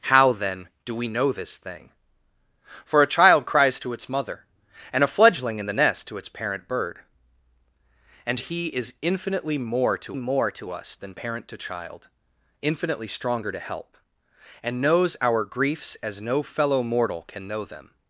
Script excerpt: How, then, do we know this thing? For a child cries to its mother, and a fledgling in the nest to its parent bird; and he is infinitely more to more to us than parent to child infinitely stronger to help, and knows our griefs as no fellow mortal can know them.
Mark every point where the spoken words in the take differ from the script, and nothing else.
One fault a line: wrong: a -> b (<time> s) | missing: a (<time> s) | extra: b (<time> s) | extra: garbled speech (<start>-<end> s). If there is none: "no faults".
no faults